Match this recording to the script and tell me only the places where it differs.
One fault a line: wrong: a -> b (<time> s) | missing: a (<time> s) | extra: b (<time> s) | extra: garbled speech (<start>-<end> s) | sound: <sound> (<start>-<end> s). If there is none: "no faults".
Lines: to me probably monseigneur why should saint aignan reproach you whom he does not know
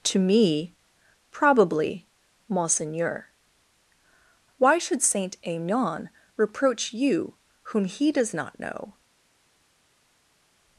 no faults